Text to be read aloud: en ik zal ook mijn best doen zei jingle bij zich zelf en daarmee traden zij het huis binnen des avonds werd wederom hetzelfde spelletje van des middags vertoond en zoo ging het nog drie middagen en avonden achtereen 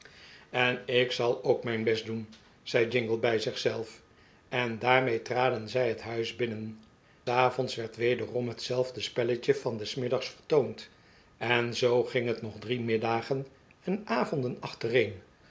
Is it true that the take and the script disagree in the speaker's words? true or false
true